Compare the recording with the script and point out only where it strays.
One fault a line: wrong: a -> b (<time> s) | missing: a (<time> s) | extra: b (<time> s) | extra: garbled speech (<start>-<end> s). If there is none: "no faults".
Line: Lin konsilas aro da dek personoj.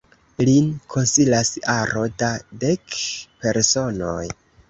no faults